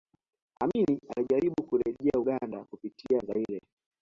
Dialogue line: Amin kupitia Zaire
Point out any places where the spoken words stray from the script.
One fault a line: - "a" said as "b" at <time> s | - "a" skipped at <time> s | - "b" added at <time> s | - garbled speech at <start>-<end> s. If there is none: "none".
- "alijaribu kurejea Uganda" added at 1.2 s